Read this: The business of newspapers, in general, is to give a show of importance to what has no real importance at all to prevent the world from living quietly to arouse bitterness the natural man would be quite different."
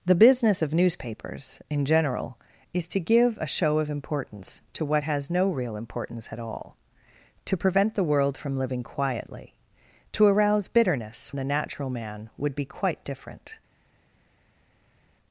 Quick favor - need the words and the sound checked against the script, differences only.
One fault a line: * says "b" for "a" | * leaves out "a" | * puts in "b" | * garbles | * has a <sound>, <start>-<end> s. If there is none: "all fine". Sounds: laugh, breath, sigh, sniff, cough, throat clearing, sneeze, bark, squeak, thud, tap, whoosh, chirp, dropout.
all fine